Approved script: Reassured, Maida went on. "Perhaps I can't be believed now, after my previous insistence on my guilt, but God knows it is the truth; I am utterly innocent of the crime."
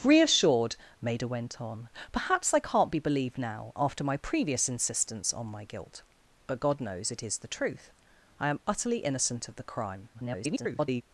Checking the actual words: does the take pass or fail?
fail